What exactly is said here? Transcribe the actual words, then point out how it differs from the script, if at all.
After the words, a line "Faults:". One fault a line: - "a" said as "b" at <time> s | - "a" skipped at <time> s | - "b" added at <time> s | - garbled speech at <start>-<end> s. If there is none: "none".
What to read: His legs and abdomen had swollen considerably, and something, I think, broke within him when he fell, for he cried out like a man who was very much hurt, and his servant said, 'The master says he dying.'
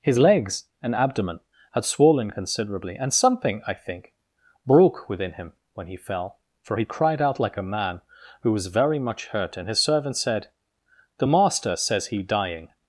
His legs and abdomen had swollen considerably, and something, I think, broke within him when he fell, for he cried out like a man who was very much hurt, and his servant said, 'The master says he dying.'
Faults:
none